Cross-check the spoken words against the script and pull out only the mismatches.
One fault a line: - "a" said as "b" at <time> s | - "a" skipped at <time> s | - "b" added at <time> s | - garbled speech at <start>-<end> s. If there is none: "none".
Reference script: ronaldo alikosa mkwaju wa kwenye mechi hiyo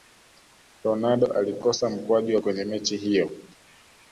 none